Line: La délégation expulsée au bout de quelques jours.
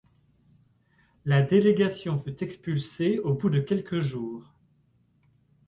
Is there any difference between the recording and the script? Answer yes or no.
yes